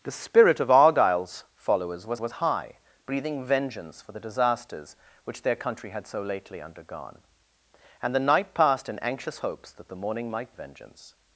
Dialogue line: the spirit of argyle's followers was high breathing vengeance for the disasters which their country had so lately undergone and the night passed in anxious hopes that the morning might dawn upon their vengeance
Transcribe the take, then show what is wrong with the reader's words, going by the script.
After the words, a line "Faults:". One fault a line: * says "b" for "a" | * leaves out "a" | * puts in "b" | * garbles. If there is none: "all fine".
the spirit of argyle's followers was was high breathing vengeance for the disasters which their country had so lately undergone and the night passed in anxious hopes that the morning might vengeance
Faults:
* puts in "was"
* leaves out "dawn upon their"